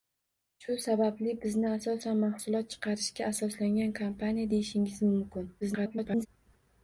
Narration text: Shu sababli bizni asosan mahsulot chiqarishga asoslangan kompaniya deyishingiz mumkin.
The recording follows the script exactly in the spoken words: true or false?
false